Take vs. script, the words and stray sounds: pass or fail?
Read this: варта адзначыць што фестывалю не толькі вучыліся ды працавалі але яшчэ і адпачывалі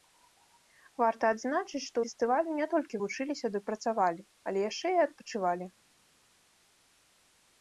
pass